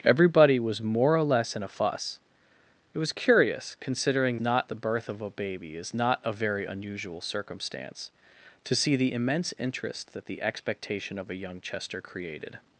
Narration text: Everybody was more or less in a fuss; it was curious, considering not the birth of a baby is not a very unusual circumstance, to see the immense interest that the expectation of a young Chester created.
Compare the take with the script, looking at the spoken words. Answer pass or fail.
pass